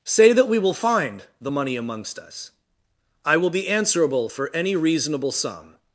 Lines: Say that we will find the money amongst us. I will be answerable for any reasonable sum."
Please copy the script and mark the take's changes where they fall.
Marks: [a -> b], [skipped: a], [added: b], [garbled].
Say that we will find the money amongst us. I will be answerable for any reasonable sum."